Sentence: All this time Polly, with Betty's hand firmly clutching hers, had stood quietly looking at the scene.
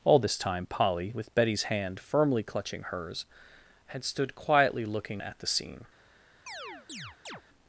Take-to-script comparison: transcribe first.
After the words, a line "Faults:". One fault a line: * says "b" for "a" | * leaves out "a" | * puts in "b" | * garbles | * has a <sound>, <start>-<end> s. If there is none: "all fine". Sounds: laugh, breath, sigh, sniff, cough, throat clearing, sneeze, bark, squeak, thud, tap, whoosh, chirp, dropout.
All this time Polly, with Betty's hand firmly clutching hers, had stood quietly looking at the scene.
Faults:
* has a chirp, 6.5-7.4 s